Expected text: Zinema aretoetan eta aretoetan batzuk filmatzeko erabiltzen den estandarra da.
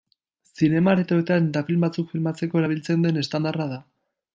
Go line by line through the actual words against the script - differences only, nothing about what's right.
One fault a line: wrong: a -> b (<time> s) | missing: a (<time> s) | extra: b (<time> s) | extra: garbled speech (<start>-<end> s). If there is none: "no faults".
wrong: aretoetan -> film (1.7 s)